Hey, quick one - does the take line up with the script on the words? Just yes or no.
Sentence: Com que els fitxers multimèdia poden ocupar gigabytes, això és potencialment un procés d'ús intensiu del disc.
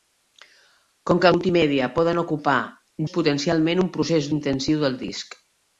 no